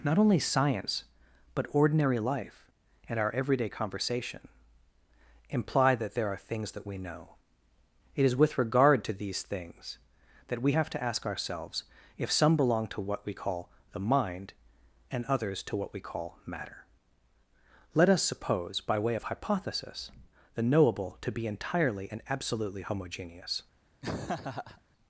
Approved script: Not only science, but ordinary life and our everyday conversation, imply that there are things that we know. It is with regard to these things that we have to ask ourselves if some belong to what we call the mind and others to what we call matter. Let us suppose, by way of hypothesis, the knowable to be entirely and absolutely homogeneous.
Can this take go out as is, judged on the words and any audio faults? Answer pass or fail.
fail